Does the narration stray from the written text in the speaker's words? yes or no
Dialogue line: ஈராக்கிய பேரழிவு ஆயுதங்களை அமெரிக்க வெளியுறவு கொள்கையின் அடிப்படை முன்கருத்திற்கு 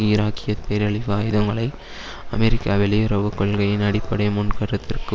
no